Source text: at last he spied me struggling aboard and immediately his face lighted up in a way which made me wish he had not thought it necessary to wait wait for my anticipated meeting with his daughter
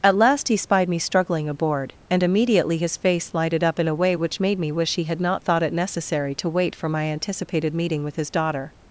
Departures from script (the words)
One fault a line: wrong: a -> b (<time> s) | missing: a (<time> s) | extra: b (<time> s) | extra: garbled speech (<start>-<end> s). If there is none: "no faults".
missing: wait (6.7 s)